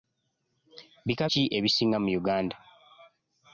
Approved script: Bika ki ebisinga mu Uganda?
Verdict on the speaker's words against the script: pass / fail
pass